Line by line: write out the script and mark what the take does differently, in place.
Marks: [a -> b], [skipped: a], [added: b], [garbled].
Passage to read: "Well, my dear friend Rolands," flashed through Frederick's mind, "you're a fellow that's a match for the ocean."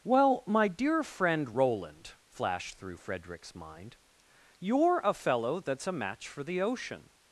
"Well, my dear friend [Rolands," -> Roland] flashed through Frederick's mind, "you're a fellow that's a match for the ocean."